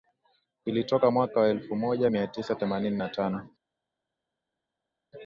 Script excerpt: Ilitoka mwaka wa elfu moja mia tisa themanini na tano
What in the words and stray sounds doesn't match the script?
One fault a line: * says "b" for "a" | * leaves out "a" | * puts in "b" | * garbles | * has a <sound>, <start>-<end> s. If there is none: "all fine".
all fine